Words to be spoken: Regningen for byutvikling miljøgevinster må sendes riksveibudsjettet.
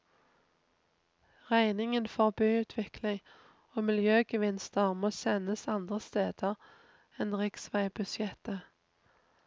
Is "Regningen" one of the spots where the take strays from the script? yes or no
no